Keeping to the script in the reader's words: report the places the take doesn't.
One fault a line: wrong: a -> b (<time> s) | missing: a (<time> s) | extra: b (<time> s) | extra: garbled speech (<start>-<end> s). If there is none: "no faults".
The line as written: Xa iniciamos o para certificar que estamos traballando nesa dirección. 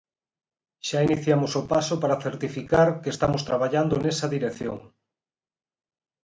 extra: paso (1.7 s)